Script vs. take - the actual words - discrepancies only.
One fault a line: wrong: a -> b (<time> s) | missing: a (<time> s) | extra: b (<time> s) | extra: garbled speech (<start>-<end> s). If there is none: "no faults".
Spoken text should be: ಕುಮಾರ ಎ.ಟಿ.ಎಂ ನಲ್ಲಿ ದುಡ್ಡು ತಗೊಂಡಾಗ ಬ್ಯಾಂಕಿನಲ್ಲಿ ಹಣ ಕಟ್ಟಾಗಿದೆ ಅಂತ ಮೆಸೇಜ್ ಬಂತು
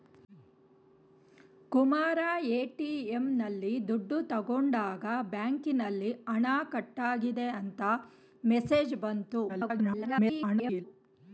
extra: garbled speech (9.5-10.8 s)